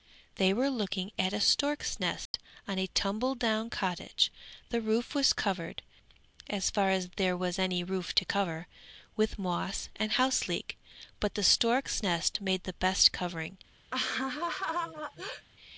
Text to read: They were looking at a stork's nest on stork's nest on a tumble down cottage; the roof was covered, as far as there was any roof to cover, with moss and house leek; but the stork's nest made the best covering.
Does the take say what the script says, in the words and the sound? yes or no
no